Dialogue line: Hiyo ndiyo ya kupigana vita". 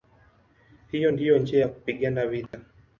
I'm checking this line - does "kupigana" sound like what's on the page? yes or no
yes